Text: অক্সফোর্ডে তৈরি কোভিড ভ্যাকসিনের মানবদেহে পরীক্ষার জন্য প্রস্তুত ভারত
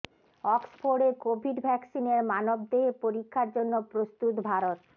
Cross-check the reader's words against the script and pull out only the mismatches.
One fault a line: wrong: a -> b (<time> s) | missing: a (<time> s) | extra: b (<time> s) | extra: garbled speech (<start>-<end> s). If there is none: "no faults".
missing: তৈরি (1.1 s)